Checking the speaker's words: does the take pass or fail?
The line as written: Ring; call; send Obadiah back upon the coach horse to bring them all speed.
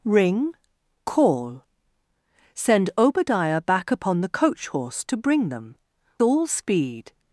pass